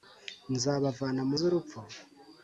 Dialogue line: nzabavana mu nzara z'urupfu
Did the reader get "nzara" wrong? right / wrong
wrong